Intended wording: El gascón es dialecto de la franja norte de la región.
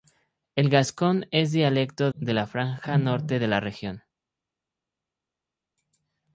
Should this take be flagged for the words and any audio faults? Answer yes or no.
no